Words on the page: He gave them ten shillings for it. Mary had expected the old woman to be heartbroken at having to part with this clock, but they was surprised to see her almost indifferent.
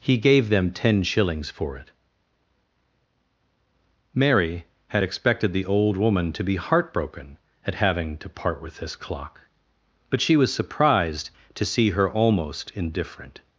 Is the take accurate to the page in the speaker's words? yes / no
no